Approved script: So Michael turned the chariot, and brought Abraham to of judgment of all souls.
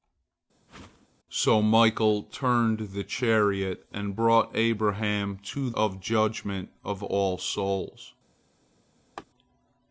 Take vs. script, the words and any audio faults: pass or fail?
fail